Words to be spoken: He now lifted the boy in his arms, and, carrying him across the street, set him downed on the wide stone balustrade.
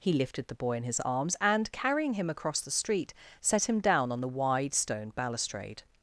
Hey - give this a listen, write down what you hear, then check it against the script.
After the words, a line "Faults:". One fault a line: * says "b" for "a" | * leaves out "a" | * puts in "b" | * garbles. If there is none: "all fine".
He lifted the boy in his arms, and, carrying him across the street, set him down on the wide stone balustrade.
Faults:
* leaves out "now"
* says "down" for "downed"